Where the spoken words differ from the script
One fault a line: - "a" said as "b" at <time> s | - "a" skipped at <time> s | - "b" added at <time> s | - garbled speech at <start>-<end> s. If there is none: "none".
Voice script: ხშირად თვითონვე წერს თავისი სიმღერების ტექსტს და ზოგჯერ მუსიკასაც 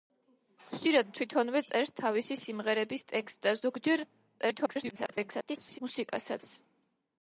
- garbled speech at 4.4-5.8 s